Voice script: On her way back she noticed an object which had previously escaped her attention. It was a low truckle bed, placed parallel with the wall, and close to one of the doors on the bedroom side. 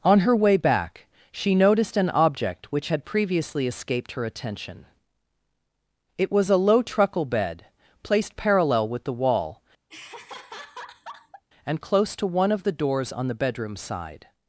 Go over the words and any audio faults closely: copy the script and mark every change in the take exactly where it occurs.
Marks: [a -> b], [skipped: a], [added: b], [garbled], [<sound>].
On her way back she noticed an object which had previously escaped her attention. It was a low truckle bed, placed parallel with the wall, [laugh] and close to one of the doors on the bedroom side.